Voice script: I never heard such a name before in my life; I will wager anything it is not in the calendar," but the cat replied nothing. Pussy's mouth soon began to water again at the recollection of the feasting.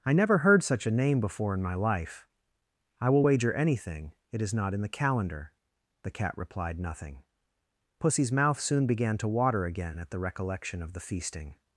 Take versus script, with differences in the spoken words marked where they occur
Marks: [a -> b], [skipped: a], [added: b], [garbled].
I never heard such a name before in my life; I will wager anything it is not in the calendar," [skipped: but] the cat replied nothing. Pussy's mouth soon began to water again at the recollection of the feasting.